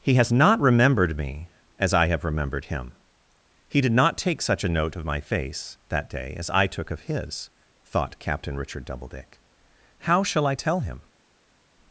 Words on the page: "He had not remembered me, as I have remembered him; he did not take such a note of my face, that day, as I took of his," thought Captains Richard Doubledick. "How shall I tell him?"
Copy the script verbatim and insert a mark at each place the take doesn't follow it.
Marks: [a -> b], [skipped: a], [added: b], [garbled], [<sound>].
"He [had -> has] not remembered me, as I have remembered him; he did not take such a note of my face, that day, as I took of his," thought [Captains -> Captain] Richard Doubledick. "How shall I tell him?"